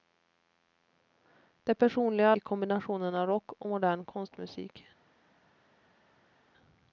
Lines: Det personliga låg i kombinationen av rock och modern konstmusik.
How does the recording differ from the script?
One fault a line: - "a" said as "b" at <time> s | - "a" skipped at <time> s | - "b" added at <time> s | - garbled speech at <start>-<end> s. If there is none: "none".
- "låg" skipped at 2.4 s